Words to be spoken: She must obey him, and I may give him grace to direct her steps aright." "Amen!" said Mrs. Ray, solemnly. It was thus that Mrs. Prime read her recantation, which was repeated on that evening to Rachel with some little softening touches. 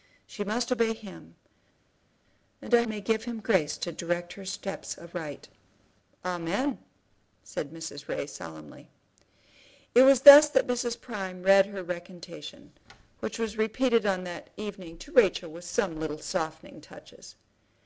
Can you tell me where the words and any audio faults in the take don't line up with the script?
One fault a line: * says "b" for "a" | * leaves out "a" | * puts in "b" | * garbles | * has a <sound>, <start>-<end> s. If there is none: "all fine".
all fine